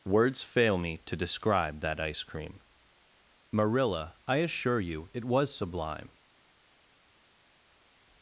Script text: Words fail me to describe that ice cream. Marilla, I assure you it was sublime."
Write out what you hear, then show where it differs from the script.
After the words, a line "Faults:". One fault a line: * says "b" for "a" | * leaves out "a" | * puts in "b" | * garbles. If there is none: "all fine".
Words fail me to describe that ice cream. Marilla, I assure you it was sublime."
Faults:
all fine